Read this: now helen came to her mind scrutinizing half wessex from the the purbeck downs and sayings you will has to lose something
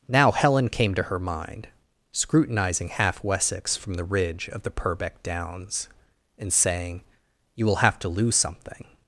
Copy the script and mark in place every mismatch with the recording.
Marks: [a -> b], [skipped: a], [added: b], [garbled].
now helen came to her mind scrutinizing half wessex from the [added: ridge of] the purbeck downs and [sayings -> saying] you will [has -> have] to lose something